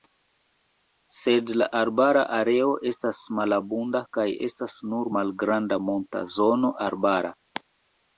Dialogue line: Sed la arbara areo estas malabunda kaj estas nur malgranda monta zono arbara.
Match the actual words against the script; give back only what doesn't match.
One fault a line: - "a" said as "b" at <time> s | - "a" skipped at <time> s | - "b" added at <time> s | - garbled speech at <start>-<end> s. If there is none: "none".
none